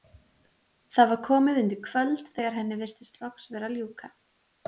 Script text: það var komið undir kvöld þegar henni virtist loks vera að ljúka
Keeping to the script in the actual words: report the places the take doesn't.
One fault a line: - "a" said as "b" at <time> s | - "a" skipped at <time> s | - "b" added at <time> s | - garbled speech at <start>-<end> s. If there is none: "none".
none